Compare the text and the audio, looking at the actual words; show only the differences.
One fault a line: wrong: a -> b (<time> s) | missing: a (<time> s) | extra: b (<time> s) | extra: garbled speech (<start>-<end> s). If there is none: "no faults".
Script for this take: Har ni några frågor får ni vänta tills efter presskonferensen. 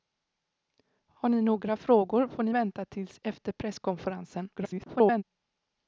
extra: garbled speech (4.6-5.2 s)